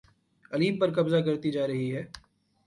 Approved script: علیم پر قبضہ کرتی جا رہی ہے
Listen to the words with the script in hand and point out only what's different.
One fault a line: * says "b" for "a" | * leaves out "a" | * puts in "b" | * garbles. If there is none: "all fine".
all fine